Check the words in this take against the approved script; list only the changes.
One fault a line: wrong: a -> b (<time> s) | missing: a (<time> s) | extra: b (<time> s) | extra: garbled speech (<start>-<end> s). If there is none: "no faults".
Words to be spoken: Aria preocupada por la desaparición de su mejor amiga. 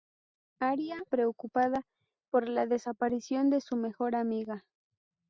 no faults